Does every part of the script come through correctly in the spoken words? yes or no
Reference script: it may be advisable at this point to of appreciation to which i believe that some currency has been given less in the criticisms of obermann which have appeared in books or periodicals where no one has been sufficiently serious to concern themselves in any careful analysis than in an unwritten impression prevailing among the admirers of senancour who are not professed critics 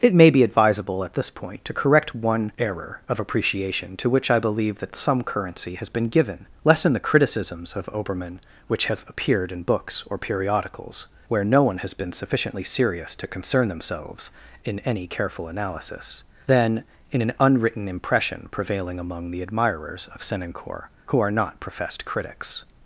no